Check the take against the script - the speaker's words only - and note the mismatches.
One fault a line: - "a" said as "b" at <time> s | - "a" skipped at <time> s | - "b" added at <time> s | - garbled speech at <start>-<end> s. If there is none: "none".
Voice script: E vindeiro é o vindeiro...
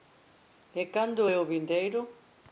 - "vindeiro" said as "cando" at 0.8 s